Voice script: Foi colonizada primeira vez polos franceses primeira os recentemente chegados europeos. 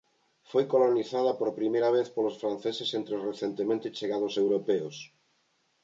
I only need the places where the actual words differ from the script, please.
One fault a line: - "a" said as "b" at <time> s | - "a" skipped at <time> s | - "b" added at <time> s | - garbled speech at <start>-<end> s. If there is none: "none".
- "por" added at 1.4 s
- "primeira" said as "entre" at 3.0 s